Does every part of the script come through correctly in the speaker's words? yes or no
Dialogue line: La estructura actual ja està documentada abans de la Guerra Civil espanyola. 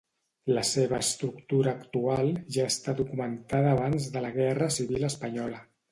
no